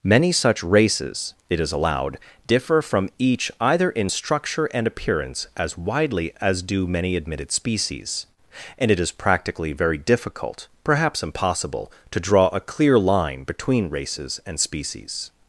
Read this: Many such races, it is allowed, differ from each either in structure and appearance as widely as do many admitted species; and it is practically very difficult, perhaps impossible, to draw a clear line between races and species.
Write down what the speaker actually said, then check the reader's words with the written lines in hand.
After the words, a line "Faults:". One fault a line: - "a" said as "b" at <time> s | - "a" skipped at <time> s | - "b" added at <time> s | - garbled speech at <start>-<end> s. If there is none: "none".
Many such races, it is allowed, differ from each either in structure and appearance as widely as do many admitted species; and it is practically very difficult, perhaps impossible, to draw a clear line between races and species.
Faults:
none